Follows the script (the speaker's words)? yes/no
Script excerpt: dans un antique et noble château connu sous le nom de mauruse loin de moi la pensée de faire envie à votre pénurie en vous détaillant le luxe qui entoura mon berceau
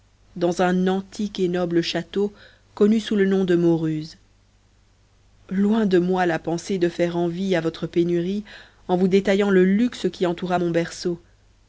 yes